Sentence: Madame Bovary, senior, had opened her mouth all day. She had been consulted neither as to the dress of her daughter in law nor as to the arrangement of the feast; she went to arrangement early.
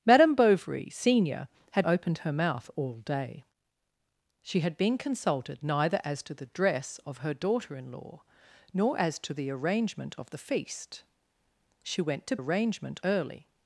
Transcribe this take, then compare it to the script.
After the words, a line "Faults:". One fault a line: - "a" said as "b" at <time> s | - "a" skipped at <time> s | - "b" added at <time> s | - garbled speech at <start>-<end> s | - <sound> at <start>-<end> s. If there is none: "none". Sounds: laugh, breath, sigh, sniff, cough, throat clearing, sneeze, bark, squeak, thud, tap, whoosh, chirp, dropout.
Madame Bovary, senior, had opened her mouth all day. She had been consulted neither as to the dress of her daughter in law nor as to the arrangement of the feast; she went to arrangement early.
Faults:
none